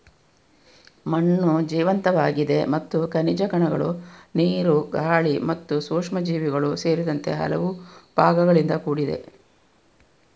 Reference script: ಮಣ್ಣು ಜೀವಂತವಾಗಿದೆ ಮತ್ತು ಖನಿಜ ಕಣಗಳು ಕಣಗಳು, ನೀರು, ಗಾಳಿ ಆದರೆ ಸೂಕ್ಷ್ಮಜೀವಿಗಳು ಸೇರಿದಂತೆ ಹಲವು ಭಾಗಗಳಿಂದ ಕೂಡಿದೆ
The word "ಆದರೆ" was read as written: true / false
false